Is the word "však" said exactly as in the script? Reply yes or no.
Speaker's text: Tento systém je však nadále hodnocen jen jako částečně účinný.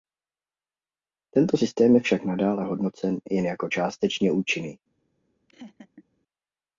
yes